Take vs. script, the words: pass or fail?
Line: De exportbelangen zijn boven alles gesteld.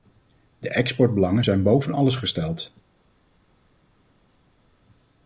pass